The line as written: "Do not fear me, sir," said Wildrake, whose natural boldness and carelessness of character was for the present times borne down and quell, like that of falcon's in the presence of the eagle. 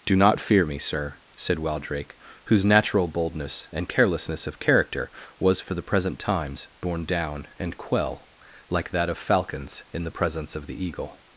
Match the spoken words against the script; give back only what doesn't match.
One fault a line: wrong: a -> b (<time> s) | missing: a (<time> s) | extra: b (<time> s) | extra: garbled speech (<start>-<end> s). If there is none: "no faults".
no faults